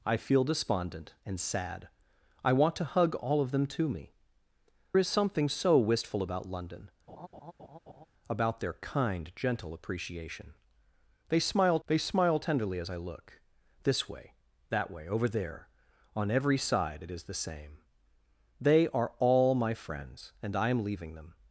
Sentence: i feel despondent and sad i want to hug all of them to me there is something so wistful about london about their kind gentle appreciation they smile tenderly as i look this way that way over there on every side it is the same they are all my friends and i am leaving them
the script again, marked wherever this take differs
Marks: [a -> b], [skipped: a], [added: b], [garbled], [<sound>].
i feel despondent and sad i want to hug all of them to me [skipped: there] is something so wistful about london [laugh] about their kind gentle appreciation they smile [added: they smile] tenderly as i look this way that way over there on every side it is the same they are all my friends and i am leaving them